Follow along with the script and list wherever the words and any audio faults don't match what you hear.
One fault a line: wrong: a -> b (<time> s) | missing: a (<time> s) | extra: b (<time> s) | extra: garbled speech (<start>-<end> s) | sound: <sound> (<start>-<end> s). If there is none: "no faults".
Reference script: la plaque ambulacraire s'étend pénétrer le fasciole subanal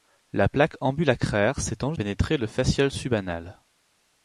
no faults